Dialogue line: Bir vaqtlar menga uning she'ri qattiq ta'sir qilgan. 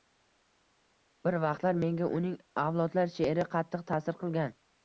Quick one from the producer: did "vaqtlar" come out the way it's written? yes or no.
yes